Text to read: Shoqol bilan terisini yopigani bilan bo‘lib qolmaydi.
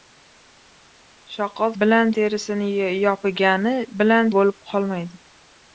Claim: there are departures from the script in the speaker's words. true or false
false